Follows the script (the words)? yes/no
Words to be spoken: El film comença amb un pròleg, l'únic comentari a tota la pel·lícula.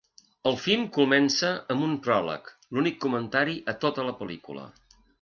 yes